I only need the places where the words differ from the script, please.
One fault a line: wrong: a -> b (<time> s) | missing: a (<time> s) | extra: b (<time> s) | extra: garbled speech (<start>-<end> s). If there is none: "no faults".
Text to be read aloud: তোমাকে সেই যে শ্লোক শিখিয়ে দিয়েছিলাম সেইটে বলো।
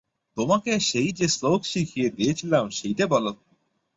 no faults